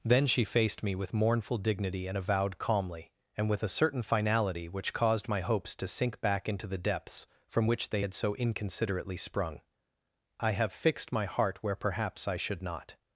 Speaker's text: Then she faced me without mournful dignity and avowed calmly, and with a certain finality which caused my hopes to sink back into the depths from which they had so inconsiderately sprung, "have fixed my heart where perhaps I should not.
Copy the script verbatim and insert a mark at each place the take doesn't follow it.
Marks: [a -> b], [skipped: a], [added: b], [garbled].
Then she faced me [without -> with] mournful dignity and avowed calmly, and with a certain finality which caused my hopes to sink back into the depths from which they had so inconsiderately sprung, [added: I] "have fixed my heart where perhaps I should not.